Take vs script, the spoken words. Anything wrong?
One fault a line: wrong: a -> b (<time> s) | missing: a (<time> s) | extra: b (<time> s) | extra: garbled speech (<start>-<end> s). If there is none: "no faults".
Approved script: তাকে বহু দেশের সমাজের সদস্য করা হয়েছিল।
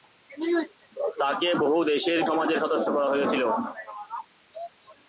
no faults